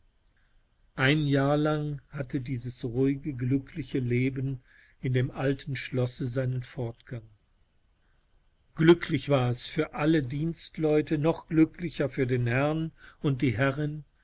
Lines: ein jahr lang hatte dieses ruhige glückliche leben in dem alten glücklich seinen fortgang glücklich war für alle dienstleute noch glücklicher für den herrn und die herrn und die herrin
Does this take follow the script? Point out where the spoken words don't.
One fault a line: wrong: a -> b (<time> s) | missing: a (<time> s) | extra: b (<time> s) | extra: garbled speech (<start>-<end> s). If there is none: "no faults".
wrong: glücklich -> schlosse (5.8 s)
extra: es (9.5 s)
missing: herrn und die (13.6 s)